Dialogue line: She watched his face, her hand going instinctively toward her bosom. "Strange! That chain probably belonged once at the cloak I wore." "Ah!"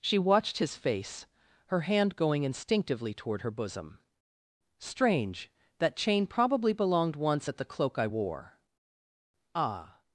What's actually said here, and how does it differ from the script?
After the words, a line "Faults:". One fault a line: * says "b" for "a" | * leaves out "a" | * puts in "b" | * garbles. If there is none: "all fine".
She watched his face, her hand going instinctively toward her bosom. "Strange! That chain probably belonged once at the cloak I wore." "Ah!"
Faults:
all fine